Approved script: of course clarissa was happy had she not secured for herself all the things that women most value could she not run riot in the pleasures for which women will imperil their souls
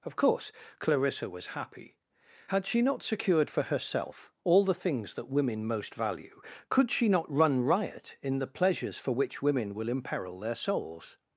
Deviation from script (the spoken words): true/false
false